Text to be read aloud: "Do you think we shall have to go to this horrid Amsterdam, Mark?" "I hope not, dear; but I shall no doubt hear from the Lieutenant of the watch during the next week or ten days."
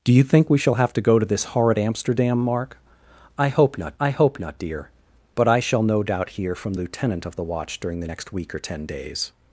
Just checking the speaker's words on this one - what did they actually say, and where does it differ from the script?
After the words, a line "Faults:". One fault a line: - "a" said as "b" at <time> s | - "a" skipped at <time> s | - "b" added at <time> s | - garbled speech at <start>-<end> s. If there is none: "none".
"Do you think we shall have to go to this horrid Amsterdam, Mark?" "I hope not I hope not, dear; but I shall no doubt hear from Lieutenant of the watch during the next week or ten days."
Faults:
- "I hope not" added at 4.0 s
- "the" skipped at 6.7 s